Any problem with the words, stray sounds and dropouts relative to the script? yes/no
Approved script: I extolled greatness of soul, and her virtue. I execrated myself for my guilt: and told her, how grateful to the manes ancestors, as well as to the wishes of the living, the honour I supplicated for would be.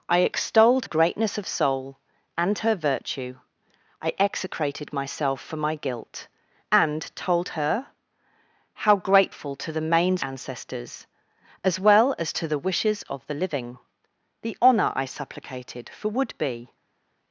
no